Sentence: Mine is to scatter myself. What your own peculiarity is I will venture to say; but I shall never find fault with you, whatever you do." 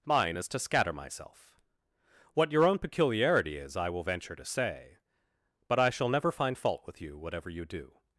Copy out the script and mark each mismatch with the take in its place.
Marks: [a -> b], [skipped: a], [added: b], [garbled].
Mine is to scatter myself. What your own peculiarity is I will venture to say; but I shall never find fault with you, whatever you do."